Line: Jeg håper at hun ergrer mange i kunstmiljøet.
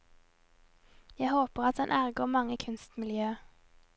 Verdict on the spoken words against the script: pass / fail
fail